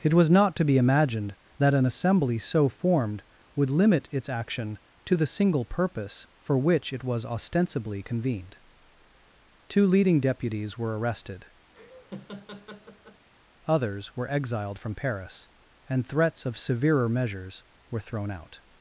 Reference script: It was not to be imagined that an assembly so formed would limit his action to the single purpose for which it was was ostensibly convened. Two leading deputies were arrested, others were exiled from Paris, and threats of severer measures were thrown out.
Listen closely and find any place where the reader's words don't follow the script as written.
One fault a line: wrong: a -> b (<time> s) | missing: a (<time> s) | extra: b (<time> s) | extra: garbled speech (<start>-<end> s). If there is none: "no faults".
wrong: his -> its (4.1 s)
missing: was (7.2 s)